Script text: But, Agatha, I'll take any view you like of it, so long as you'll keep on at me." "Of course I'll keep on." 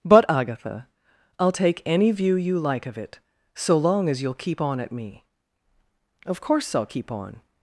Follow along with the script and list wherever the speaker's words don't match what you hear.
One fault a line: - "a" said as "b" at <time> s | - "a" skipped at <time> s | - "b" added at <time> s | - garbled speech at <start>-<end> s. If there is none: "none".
none